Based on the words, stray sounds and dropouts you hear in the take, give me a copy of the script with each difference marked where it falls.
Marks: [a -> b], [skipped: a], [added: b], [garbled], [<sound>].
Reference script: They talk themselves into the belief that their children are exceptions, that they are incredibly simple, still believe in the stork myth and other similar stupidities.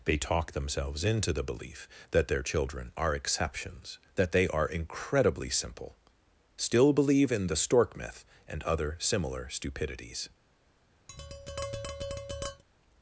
They talk themselves into the belief that their children are exceptions, that they are incredibly simple, still believe in the stork myth and other similar stupidities. [tap]